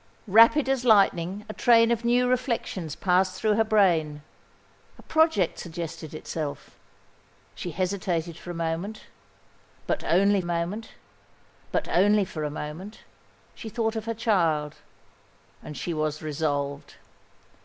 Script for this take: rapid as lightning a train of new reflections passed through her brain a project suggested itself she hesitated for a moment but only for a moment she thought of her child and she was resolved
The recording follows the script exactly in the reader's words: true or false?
false